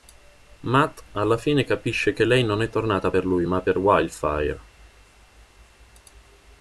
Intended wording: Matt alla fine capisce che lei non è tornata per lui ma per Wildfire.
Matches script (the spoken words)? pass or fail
pass